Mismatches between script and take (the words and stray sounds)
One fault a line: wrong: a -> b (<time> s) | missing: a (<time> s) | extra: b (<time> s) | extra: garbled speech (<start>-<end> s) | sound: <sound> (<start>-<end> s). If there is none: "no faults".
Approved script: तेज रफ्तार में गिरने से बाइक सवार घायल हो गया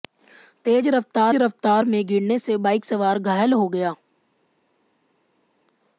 extra: रफ्तार (1.3 s)